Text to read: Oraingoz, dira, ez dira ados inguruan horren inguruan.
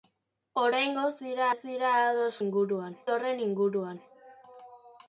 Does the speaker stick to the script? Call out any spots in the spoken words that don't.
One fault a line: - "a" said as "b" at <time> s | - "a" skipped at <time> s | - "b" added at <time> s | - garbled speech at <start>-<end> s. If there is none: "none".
none